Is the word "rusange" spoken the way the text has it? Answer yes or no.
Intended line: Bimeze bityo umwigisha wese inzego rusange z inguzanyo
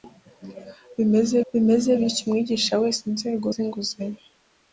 no